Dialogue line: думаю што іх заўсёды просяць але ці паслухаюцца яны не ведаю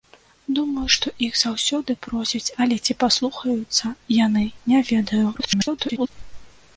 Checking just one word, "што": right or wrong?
right